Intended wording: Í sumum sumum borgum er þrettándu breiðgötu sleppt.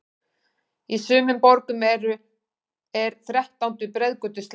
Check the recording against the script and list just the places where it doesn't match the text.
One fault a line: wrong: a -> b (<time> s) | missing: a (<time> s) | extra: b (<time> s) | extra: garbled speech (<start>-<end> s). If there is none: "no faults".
missing: sumum (1.4 s)